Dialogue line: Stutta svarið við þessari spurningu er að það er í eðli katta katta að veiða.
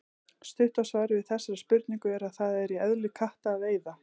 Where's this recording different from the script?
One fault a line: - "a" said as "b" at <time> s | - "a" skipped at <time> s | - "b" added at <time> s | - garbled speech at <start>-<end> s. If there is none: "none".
- "katta" skipped at 3.5 s